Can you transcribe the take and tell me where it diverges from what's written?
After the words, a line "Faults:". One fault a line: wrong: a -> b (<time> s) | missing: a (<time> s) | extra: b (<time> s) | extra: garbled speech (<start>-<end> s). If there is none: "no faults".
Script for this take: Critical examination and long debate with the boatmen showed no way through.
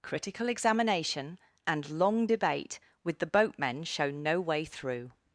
Critical examination and long debate with the boatmen show no way through.
Faults:
wrong: showed -> show (3.8 s)